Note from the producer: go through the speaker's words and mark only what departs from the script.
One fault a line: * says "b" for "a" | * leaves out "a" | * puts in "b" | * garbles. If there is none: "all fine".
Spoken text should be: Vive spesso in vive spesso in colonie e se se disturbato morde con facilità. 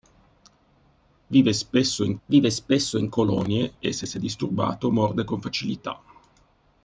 all fine